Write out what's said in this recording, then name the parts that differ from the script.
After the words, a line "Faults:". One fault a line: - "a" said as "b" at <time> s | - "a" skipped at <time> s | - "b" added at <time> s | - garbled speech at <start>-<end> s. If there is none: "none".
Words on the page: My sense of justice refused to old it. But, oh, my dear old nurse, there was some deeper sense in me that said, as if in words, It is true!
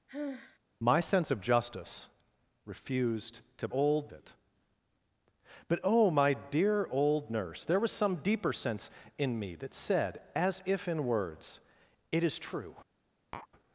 My sense of justice refused to old it. But, oh, my dear old nurse, there was some deeper sense in me that said, as if in words, It is true!
Faults:
none